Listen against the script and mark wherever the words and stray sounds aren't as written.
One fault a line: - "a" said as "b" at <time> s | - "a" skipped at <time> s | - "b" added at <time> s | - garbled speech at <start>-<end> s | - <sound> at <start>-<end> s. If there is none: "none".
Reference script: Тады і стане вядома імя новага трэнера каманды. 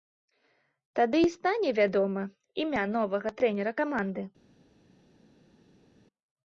none